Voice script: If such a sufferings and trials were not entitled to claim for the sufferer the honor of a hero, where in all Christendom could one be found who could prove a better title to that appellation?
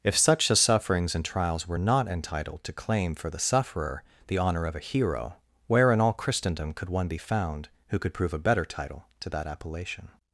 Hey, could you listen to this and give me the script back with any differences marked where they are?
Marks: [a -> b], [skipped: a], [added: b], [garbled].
If such a sufferings and trials were not entitled to claim for the sufferer the honor of a hero, where in all Christendom could one be found who could prove a better title to that appellation?